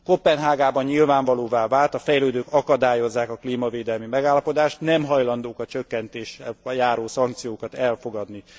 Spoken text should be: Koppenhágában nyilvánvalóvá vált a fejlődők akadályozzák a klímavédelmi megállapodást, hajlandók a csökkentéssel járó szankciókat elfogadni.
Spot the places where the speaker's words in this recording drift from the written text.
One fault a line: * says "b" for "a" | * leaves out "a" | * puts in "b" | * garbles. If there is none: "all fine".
* puts in "nem"